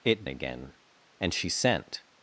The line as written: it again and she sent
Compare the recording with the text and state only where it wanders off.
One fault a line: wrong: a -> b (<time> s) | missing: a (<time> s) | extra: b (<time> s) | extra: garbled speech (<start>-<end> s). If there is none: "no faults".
no faults